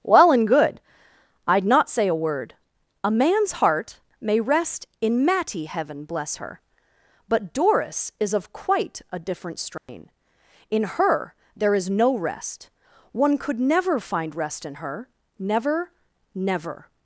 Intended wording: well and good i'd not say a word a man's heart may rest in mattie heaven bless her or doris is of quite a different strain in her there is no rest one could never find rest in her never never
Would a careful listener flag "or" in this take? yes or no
yes